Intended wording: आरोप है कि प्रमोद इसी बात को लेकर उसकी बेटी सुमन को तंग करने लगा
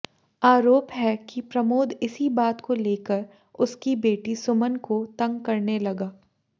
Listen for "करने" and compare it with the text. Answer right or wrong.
right